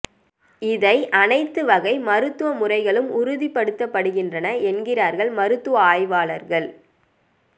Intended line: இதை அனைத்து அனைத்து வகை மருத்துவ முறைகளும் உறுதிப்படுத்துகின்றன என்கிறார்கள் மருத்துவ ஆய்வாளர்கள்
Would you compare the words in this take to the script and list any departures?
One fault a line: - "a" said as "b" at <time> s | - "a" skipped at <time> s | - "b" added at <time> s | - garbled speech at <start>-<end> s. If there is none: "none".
- "அனைத்து" skipped at 1.6 s